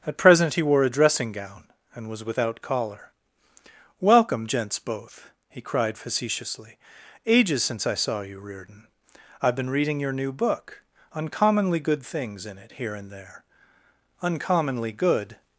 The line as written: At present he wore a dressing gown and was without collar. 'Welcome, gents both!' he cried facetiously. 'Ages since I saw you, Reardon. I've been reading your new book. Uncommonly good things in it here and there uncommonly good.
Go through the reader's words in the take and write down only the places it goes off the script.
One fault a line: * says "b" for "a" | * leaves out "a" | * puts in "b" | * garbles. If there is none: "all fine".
all fine